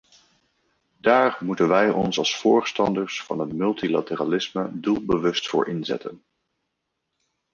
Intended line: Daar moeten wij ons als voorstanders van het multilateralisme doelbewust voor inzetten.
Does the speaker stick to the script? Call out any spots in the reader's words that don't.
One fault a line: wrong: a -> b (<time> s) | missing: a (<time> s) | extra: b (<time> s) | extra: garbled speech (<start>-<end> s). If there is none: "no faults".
no faults